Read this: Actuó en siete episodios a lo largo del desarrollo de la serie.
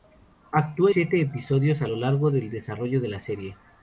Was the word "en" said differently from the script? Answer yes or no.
yes